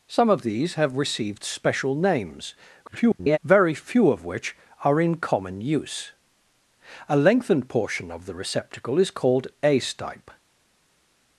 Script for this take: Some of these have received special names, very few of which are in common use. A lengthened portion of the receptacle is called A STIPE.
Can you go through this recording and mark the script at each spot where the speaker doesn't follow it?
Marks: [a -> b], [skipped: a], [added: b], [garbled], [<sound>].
Some of these have received special names, [garbled] very few of which are in common use. A lengthened portion of the receptacle is called A STIPE.